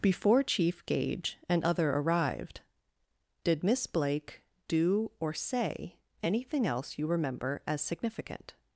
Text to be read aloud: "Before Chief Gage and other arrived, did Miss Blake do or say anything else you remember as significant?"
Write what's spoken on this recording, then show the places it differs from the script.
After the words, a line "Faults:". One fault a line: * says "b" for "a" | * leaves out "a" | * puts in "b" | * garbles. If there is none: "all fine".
"Before Chief Gage and other arrived, did Miss Blake do or say anything else you remember as significant?"
Faults:
all fine